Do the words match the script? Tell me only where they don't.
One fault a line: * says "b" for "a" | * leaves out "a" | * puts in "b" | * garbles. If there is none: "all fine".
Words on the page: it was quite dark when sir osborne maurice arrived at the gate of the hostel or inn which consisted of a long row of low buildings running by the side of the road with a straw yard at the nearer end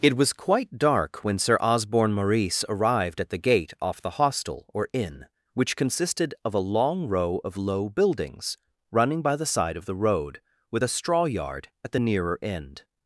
* says "off" for "of"